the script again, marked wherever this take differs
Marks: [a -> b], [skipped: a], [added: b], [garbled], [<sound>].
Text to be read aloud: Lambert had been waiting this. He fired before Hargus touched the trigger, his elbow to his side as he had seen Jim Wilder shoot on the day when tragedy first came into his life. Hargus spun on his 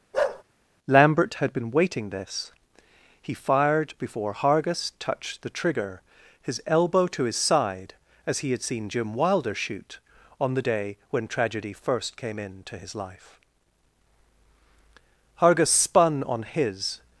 [bark] Lambert had been waiting this. He fired before Hargus touched the trigger, his elbow to his side as he had seen Jim Wilder shoot on the day when tragedy first came into his life. Hargus spun on his